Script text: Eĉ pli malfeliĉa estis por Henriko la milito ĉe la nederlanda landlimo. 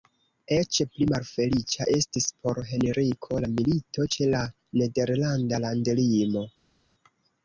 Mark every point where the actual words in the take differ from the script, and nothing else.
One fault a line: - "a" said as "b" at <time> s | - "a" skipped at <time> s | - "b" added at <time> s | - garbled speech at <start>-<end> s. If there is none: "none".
none